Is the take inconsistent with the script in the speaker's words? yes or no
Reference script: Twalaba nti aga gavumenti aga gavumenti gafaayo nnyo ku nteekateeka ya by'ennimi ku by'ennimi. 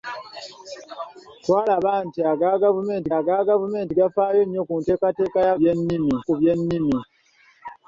no